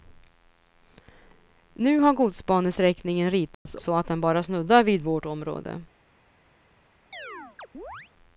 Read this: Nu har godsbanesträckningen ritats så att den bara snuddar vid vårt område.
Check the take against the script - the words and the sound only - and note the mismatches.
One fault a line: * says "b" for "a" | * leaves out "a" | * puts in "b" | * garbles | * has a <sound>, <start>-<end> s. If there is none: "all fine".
* has a dropout, 3.5-3.7 s
* has a chirp, 7.1-8.1 s